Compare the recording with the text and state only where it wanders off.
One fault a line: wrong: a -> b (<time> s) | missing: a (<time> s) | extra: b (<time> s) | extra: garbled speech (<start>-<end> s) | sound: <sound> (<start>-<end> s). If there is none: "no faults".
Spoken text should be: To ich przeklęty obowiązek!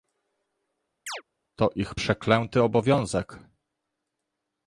sound: chirp (1.1-1.2 s)